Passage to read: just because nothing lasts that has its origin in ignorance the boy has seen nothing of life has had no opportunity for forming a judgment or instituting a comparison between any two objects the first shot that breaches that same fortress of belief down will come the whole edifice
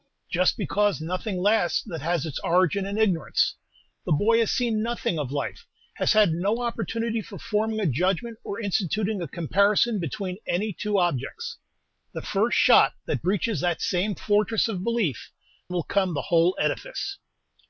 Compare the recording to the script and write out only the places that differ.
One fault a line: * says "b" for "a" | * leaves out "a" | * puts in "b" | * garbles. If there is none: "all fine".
* leaves out "down"